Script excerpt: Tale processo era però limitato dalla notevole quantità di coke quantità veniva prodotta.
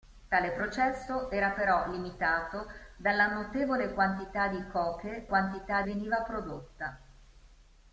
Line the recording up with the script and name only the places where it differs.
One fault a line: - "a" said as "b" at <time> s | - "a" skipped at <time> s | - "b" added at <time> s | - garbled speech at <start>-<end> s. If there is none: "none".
none